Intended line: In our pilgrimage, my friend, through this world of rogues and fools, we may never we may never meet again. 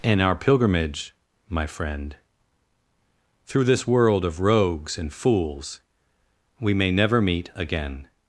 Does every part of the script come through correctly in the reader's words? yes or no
no